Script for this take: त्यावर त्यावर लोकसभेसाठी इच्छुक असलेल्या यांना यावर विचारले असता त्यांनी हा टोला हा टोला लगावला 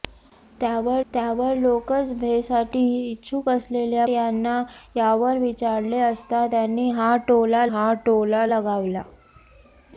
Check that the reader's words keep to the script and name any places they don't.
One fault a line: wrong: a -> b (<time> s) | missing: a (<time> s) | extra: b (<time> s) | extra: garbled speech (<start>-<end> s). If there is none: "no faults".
no faults